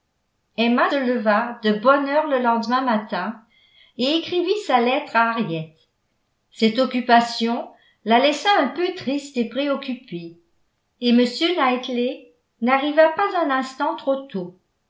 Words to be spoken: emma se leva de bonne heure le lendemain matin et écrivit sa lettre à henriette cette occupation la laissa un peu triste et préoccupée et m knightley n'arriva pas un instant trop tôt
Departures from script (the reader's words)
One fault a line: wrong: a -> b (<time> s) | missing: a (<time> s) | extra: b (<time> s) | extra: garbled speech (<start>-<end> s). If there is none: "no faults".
missing: se (0.9 s)